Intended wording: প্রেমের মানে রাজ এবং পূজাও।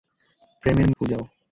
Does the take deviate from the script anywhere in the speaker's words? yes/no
yes